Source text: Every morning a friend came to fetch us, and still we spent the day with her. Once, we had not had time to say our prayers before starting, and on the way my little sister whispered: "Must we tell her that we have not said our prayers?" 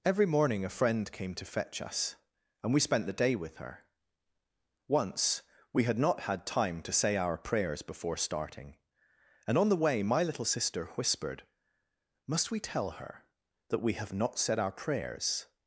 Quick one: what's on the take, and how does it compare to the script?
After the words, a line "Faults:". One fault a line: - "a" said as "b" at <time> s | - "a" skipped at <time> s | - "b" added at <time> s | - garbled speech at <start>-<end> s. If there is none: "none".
Every morning a friend came to fetch us, and we spent the day with her. Once, we had not had time to say our prayers before starting, and on the way my little sister whispered: "Must we tell her that we have not said our prayers?"
Faults:
- "still" skipped at 2.7 s